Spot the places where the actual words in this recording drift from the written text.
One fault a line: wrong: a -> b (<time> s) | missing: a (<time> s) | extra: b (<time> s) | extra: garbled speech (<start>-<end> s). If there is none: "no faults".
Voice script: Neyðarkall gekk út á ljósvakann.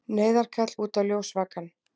missing: gekk (0.7 s)